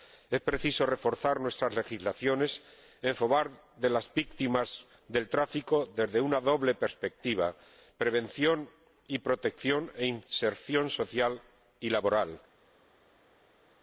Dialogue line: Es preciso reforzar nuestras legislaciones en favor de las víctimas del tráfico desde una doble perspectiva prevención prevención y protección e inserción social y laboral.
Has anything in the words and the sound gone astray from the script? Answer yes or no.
yes